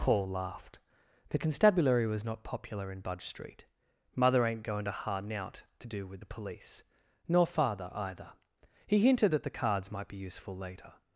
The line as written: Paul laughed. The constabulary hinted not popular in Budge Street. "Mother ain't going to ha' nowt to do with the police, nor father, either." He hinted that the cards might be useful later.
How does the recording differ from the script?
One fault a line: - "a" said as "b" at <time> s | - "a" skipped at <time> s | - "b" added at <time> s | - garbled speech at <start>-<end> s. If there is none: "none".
- "hinted" said as "was" at 2.1 s